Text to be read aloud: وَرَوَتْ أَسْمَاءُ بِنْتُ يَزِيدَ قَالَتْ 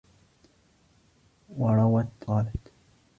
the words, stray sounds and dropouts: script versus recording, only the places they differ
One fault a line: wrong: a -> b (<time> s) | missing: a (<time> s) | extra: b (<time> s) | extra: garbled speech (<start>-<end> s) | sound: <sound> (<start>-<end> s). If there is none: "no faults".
missing: أَسْمَاءُ بِنْتُ يَزِيدَ (2.1 s)